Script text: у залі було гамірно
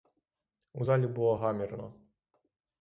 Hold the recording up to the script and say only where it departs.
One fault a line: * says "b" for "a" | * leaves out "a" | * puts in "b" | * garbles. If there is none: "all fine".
all fine